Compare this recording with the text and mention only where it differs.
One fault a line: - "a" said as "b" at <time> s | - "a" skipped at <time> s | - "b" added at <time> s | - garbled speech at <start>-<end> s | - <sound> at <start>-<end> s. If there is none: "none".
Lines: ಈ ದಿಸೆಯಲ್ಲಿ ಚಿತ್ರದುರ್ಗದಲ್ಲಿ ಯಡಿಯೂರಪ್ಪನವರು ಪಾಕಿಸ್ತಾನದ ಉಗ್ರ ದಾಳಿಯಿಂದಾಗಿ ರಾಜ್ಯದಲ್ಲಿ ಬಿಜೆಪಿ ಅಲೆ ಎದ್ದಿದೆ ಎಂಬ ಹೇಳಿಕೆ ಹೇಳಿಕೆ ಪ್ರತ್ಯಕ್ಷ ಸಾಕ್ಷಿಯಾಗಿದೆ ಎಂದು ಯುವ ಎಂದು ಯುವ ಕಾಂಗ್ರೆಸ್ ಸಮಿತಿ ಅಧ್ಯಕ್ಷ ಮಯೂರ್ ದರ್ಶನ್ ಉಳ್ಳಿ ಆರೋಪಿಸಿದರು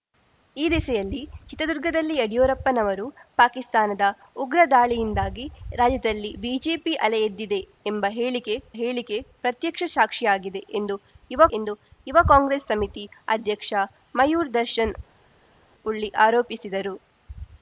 none